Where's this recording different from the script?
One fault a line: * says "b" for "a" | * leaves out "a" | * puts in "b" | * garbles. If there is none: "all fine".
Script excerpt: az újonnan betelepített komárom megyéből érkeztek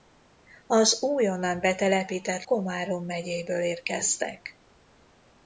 all fine